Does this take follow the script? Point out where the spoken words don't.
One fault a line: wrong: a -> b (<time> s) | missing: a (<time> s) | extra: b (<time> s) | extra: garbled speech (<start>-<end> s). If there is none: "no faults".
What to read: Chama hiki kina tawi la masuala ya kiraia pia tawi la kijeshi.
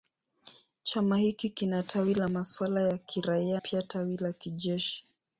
no faults